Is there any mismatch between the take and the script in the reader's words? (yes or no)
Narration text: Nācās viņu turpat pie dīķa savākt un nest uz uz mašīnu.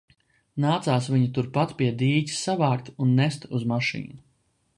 yes